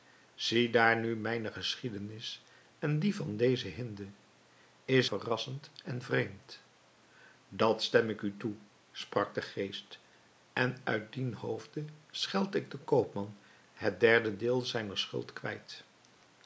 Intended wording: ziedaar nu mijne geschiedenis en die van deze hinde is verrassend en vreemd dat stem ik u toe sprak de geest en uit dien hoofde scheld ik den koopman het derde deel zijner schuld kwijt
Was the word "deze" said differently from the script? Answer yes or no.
no